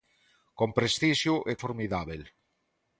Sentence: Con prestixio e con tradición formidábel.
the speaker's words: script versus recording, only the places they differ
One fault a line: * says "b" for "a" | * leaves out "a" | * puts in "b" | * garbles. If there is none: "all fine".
* leaves out "con tradición"